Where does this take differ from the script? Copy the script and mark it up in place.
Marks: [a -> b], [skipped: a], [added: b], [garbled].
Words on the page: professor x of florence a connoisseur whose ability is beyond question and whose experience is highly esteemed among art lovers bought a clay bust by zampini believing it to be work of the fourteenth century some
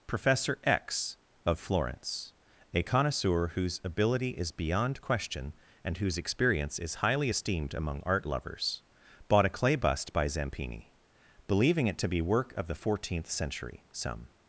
professor x of florence a connoisseur whose ability is beyond question and whose experience is highly esteemed among art lovers bought a clay bust by zampini believing it to be work of the fourteenth century some